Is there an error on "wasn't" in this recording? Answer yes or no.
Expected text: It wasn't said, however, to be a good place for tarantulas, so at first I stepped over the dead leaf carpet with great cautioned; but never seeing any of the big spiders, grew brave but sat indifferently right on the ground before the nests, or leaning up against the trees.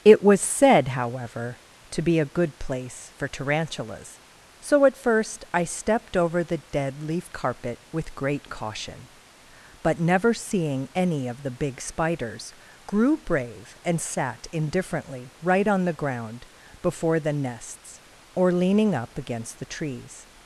yes